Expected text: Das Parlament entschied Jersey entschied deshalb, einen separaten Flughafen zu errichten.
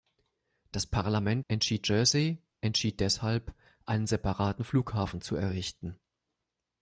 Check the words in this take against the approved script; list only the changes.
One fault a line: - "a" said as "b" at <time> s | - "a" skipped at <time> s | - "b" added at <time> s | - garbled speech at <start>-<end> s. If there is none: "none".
none